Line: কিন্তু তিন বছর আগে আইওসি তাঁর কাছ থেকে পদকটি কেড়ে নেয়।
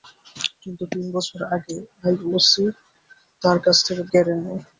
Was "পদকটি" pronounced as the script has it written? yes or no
no